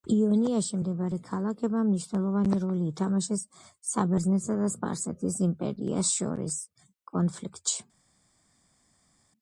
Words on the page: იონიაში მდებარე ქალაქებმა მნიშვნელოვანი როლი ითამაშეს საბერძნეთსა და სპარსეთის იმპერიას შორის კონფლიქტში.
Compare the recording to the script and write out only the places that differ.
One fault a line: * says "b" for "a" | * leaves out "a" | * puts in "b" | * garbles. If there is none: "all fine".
all fine